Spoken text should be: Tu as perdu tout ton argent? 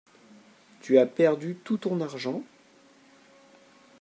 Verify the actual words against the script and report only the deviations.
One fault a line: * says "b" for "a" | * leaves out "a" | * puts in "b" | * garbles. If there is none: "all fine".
all fine